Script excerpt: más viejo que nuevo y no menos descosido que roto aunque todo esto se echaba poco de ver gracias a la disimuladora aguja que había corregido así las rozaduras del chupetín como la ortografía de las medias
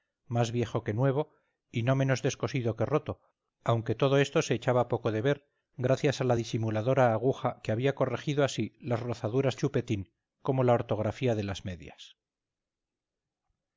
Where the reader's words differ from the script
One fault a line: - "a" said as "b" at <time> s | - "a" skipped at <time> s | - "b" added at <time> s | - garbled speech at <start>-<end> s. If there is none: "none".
- "del" skipped at 9.6 s